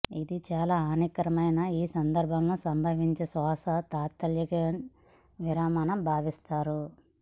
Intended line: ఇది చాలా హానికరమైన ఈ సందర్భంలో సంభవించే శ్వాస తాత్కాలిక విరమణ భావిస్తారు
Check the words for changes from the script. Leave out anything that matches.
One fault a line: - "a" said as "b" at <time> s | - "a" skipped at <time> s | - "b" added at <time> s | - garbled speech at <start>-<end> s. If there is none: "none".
none